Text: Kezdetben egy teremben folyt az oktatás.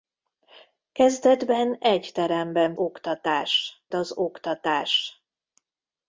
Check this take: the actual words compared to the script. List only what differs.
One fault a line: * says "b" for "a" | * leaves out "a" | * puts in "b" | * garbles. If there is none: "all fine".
* says "oktatás" for "folyt"